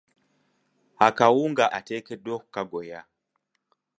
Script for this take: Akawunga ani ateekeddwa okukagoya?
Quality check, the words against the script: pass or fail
fail